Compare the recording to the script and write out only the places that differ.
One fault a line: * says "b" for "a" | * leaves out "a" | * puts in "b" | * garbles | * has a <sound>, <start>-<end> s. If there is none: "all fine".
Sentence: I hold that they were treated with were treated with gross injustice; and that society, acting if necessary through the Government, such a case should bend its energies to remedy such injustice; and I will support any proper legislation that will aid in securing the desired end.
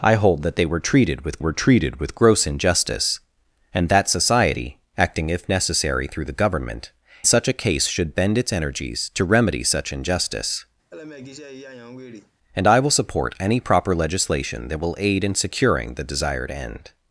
* has a laugh, 10.9-12.3 s